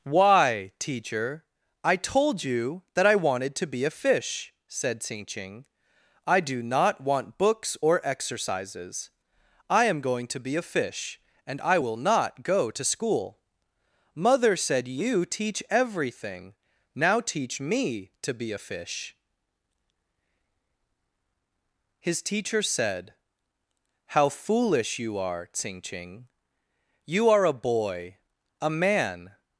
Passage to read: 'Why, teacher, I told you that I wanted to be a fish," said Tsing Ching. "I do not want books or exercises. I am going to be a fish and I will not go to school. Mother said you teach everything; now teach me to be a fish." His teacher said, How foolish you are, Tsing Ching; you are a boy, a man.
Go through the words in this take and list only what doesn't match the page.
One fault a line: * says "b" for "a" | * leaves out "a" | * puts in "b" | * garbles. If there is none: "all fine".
all fine